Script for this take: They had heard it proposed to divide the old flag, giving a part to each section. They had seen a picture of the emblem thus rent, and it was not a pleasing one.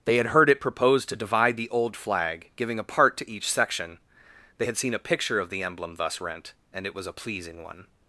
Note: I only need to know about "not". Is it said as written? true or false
false